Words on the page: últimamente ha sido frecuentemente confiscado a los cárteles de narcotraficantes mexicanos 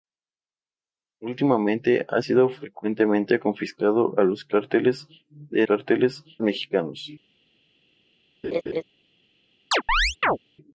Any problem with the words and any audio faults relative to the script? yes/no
yes